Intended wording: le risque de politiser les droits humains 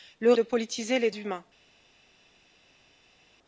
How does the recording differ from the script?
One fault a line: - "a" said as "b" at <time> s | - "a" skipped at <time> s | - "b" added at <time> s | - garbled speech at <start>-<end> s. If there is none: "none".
- "risque" skipped at 0.3 s
- "droits" skipped at 1.1 s